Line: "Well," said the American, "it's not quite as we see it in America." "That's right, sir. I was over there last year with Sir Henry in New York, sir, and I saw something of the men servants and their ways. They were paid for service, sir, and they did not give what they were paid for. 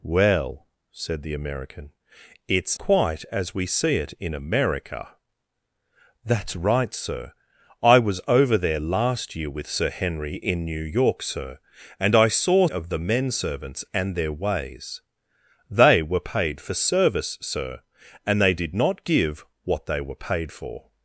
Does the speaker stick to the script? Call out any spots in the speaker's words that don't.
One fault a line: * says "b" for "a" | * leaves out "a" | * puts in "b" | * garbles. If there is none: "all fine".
* leaves out "not"
* leaves out "something"